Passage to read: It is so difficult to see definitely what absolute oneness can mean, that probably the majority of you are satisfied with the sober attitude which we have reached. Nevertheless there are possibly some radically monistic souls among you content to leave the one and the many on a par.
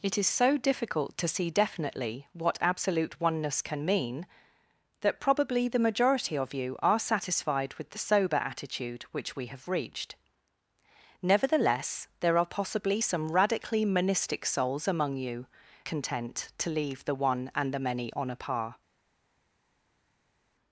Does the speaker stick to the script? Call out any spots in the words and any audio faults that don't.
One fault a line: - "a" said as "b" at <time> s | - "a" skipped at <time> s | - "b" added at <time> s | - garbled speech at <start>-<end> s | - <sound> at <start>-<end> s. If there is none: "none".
none